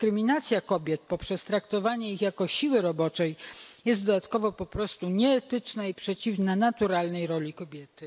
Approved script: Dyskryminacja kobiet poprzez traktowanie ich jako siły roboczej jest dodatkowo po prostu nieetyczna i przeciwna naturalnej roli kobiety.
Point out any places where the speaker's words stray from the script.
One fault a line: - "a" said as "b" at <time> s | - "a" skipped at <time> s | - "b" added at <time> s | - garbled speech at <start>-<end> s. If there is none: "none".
none